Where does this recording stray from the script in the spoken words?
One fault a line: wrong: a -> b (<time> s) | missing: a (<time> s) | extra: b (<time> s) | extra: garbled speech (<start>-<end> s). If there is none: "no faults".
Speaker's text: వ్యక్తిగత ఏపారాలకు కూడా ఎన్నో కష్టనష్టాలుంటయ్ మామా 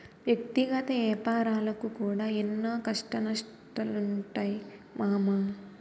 no faults